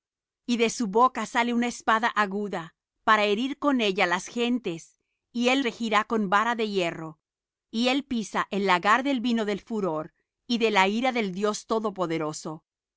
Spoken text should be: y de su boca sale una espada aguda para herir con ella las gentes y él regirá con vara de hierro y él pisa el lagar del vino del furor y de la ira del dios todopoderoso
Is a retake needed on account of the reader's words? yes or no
no